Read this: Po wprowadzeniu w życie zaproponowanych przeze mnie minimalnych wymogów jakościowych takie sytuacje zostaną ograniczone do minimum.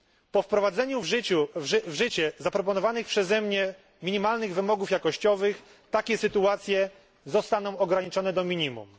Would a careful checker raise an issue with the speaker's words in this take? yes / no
no